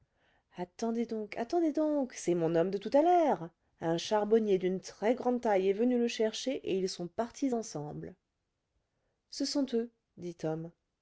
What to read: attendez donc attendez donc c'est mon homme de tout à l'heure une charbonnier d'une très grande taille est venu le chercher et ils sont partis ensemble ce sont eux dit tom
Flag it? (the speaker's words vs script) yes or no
yes